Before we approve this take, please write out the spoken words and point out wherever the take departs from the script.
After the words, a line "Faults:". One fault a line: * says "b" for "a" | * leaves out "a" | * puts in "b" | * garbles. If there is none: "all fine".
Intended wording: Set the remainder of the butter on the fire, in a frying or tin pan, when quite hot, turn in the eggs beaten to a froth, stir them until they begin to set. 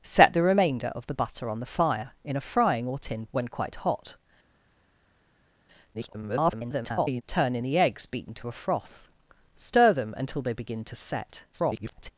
Set the remainder of the butter on the fire, in a frying or tin when quite hot, [garbled] turn in the eggs beaten to a froth, stir them until they begin to set. [garbled]
Faults:
* leaves out "pan"
* garbles
* garbles